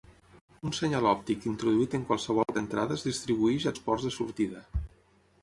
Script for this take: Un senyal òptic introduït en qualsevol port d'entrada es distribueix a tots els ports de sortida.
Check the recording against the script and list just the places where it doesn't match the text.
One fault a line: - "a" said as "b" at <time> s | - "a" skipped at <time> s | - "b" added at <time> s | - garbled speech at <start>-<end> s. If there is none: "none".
- "port" skipped at 2.5 s
- "tots" skipped at 3.8 s